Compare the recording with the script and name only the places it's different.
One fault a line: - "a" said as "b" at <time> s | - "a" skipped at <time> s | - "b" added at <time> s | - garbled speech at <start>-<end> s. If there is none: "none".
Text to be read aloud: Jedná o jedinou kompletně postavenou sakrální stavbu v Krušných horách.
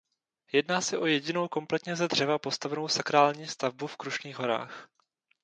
- "se" added at 0.8 s
- "ze dřeva" added at 1.9 s